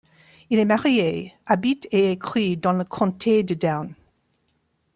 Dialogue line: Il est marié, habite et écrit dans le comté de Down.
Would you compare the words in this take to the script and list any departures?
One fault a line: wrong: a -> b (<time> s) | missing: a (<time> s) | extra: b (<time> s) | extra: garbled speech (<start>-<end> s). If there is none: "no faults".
no faults